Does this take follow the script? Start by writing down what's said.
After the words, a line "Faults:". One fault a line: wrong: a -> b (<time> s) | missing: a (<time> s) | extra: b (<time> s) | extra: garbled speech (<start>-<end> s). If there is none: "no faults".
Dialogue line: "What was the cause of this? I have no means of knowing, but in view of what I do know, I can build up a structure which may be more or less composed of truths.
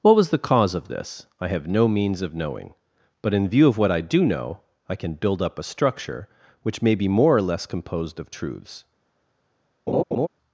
"What was the cause of this? I have no means of knowing, but in view of what I do know, I can build up a structure which may be more or less composed of truths.
Faults:
no faults